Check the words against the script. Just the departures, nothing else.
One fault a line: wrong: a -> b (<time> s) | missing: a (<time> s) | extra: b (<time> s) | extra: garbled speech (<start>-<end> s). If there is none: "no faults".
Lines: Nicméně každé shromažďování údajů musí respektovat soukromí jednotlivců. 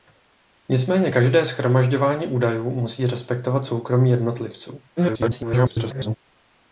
extra: garbled speech (5.0-6.2 s)